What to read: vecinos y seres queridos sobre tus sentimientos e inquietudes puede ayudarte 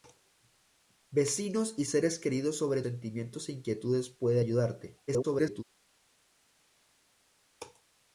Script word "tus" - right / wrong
wrong